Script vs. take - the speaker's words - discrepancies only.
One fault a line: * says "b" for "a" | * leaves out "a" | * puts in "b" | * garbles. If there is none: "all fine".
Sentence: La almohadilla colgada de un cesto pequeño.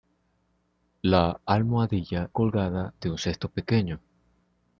all fine